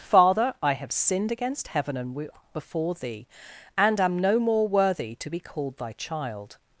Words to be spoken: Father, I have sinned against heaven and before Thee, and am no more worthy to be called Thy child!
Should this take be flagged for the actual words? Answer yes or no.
no